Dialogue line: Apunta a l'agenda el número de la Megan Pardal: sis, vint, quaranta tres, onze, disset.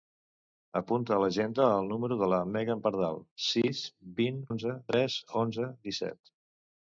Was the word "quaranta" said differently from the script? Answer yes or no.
yes